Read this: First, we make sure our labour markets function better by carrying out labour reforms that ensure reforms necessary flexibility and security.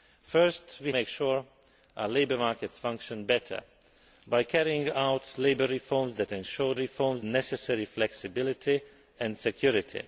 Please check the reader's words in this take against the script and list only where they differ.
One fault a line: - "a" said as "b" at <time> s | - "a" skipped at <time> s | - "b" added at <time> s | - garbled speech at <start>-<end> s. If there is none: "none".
none